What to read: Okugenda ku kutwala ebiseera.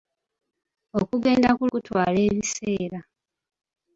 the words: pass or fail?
pass